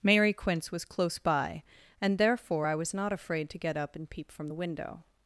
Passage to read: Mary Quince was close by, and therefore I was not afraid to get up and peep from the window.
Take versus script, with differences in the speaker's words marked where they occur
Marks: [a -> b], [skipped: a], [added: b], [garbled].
Mary Quince was close by, and therefore I was not afraid to get up and peep from the window.